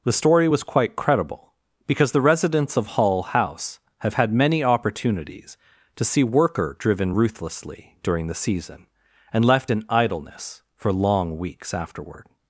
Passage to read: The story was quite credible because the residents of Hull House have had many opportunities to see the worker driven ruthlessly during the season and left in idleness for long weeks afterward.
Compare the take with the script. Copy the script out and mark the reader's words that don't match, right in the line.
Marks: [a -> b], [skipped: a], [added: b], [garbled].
The story was quite credible because the residents of Hull House have had many opportunities to see [skipped: the] worker driven ruthlessly during the season and left in idleness for long weeks afterward.